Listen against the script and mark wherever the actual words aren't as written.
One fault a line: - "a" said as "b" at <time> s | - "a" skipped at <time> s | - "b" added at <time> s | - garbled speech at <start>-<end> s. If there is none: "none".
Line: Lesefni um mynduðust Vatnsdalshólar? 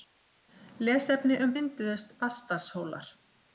none